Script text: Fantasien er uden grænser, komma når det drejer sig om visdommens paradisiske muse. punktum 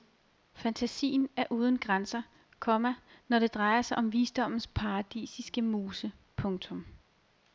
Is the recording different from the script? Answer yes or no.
no